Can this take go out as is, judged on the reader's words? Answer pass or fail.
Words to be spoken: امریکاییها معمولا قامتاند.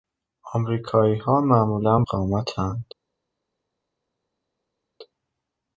pass